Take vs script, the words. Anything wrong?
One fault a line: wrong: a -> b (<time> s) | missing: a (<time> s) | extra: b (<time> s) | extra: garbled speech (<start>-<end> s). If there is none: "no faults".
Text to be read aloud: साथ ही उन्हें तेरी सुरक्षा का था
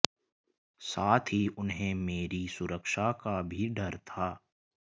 wrong: तेरी -> मेरी (1.9 s)
extra: भी डर (3.4 s)